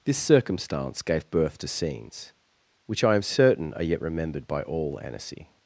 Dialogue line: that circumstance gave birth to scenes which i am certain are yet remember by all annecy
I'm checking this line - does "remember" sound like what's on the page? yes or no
no